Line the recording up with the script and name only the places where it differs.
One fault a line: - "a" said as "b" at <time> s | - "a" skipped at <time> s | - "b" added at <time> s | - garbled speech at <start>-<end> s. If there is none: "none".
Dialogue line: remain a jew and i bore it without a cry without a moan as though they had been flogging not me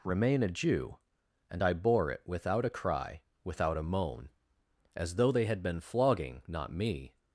none